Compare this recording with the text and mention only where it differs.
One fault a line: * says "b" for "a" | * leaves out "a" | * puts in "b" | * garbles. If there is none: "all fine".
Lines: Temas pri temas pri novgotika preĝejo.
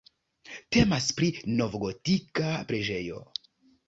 * leaves out "temas pri"